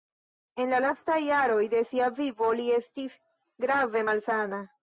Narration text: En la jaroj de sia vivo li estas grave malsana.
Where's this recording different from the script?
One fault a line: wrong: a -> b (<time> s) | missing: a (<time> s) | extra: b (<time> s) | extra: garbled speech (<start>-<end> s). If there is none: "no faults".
extra: lastaj (0.8 s)
wrong: estas -> estis (2.8 s)